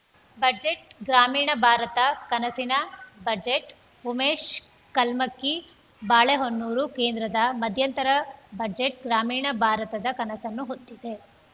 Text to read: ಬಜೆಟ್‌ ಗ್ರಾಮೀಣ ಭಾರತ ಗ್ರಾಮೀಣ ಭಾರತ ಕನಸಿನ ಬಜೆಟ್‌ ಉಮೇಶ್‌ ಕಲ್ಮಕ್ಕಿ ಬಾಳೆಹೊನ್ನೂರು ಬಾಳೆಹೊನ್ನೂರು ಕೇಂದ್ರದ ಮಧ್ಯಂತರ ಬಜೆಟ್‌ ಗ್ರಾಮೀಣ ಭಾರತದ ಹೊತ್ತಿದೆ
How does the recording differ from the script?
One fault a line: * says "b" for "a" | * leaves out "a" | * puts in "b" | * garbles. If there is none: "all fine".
* leaves out "ಗ್ರಾಮೀಣ ಭಾರತ"
* leaves out "ಬಾಳೆಹೊನ್ನೂರು"
* puts in "ಕನಸನ್ನು"